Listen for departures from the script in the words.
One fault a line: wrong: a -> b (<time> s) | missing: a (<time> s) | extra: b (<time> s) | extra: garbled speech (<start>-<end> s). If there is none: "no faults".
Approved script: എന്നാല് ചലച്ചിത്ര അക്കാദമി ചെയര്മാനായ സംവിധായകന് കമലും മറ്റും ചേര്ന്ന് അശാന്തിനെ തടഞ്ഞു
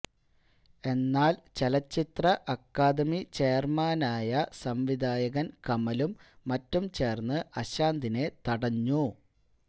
no faults